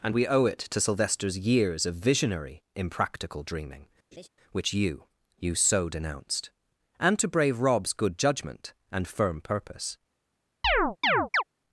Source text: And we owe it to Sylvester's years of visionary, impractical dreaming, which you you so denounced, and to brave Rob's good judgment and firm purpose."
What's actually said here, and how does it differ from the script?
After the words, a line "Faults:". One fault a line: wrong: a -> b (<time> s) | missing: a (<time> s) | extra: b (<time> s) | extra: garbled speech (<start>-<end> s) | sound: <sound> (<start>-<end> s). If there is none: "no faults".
And we owe it to Sylvester's years of visionary, impractical dreaming, which you you so denounced, and to brave Rob's good judgment and firm purpose."
Faults:
sound: laugh (4.1-4.3 s)
sound: chirp (10.6-11.4 s)